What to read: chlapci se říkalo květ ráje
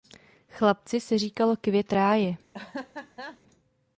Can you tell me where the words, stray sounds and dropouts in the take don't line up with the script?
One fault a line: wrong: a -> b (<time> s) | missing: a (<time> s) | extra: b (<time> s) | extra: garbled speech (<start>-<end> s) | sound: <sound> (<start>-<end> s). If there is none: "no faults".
sound: laugh (2.5-3.4 s)